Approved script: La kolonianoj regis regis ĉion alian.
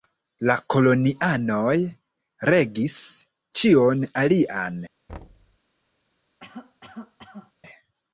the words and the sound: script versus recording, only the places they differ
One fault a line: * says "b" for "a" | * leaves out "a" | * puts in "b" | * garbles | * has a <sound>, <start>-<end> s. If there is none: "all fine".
* leaves out "regis"
* has a thud, 5.1-5.6 s
* has a cough, 6.4-7.5 s